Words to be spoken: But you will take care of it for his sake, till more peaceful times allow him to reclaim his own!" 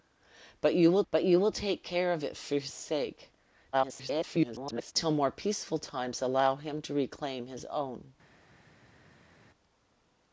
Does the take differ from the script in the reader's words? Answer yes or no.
yes